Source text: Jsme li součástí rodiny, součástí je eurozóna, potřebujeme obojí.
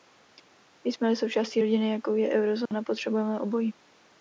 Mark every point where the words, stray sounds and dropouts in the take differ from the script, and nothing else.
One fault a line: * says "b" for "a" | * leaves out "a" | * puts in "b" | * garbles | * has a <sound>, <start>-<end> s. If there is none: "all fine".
* says "jakou" for "součástí"
* has a dropout, 2.7-2.7 s